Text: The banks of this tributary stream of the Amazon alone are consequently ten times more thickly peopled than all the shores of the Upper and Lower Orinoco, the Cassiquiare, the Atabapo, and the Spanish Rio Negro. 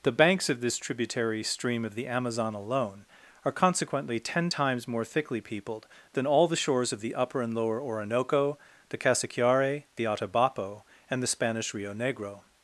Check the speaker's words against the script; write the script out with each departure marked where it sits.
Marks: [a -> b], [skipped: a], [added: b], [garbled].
The banks of this tributary stream of the Amazon alone are consequently ten times more thickly peopled than all the shores of the Upper and Lower Orinoco, the Cassiquiare, the Atabapo, and the Spanish Rio Negro.